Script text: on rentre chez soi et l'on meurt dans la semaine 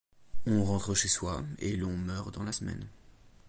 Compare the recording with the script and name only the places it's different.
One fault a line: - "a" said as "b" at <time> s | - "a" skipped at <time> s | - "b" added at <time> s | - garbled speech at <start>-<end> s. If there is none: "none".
none